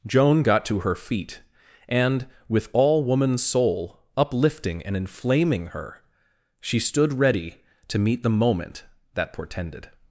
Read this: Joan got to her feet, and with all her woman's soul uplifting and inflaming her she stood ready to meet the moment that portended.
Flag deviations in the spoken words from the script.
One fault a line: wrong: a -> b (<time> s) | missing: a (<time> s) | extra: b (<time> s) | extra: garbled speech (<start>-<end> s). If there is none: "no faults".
missing: her (3.0 s)